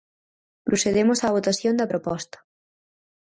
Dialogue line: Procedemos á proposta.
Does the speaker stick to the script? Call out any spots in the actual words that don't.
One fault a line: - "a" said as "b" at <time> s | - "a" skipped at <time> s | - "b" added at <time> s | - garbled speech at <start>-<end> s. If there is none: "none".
- "votación da" added at 1.4 s